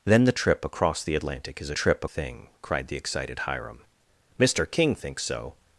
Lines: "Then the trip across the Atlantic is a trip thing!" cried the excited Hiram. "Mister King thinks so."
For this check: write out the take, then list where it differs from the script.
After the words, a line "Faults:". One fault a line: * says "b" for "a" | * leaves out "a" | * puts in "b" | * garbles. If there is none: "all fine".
"Then the trip across the Atlantic is a trip thing!" cried the excited Hiram. "Mister King thinks so."
Faults:
all fine